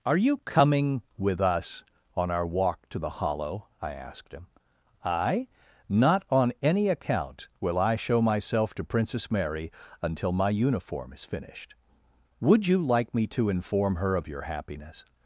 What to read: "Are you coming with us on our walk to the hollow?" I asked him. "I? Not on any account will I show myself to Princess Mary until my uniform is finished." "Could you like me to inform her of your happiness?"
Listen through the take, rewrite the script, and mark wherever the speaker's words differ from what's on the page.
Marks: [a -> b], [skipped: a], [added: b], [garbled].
"Are you coming with us on our walk to the hollow?" I asked him. "I? Not on any account will I show myself to Princess Mary until my uniform is finished." ["Could -> Would] you like me to inform her of your happiness?"